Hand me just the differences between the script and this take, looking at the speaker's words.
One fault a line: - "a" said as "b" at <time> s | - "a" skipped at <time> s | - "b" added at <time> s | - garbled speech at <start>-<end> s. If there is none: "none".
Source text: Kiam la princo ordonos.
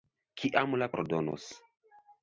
- "princo" skipped at 0.9 s